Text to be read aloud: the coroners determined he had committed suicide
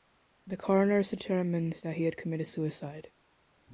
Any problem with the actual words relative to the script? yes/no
yes